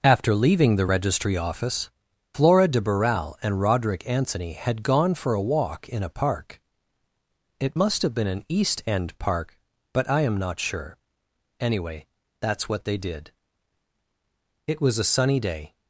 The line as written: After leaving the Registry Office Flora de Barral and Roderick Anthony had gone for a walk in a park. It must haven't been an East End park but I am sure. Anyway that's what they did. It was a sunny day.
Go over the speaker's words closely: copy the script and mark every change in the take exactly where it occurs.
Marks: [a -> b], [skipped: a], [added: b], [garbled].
After leaving the Registry Office Flora de Barral and Roderick Anthony had gone for a walk in a park. It must [haven't -> have] been an East End park but I am [added: not] sure. Anyway that's what they did. It was a sunny day.